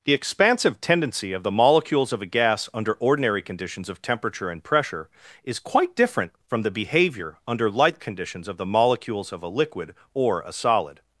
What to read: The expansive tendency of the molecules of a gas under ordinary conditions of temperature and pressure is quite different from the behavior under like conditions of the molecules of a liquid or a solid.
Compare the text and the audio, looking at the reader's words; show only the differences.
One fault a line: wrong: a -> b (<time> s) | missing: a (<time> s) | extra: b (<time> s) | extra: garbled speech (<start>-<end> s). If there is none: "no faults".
wrong: like -> light (7.7 s)